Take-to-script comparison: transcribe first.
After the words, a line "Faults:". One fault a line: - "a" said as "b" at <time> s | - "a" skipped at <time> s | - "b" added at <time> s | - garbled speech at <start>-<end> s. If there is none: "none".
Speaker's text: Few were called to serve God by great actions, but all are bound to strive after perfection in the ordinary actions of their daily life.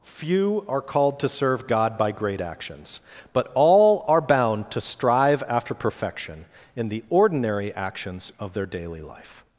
Few are called to serve God by great actions, but all are bound to strive after perfection in the ordinary actions of their daily life.
Faults:
- "were" said as "are" at 0.7 s